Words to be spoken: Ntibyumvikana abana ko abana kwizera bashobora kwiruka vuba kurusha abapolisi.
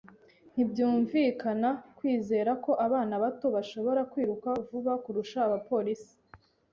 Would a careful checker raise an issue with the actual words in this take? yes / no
yes